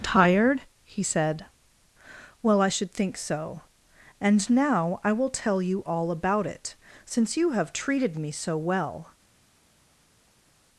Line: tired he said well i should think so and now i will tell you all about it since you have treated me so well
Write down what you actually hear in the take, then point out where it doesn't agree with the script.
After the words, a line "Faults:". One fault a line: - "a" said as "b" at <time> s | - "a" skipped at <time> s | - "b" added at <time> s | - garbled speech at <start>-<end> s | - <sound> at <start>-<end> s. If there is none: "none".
tired he said well i should think so and now i will tell you all about it since you have treated me so well
Faults:
none